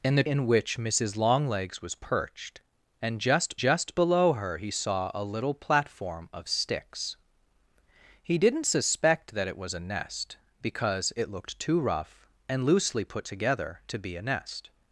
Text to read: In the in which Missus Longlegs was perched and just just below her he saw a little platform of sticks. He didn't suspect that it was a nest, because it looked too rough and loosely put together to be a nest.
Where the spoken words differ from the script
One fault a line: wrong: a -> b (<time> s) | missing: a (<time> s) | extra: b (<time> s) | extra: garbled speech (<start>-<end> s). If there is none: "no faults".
no faults